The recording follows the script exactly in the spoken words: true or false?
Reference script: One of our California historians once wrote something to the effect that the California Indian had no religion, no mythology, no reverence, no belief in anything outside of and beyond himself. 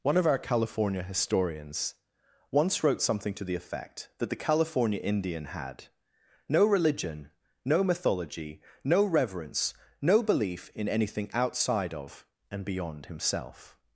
true